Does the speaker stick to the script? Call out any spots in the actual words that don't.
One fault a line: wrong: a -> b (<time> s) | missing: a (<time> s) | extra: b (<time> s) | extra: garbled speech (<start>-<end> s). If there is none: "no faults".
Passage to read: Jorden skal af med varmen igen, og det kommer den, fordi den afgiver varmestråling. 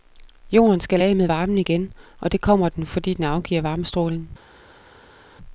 no faults